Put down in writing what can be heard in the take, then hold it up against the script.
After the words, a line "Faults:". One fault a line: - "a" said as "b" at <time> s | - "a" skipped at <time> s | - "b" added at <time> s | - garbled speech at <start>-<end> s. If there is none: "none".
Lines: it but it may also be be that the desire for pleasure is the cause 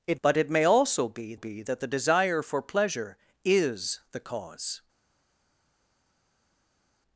it but it may also be be that the desire for pleasure is the cause
Faults:
none